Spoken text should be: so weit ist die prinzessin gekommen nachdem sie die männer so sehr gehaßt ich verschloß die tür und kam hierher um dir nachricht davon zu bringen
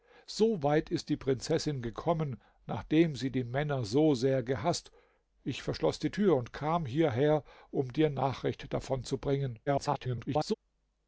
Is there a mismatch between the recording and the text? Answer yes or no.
yes